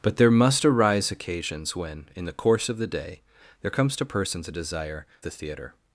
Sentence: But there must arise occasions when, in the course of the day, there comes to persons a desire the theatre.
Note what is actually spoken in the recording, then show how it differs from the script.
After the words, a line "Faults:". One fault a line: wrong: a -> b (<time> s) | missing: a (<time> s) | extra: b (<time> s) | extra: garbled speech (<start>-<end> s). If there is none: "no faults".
But there must arise occasions when, in the course of the day, there comes to persons a desire the theatre.
Faults:
no faults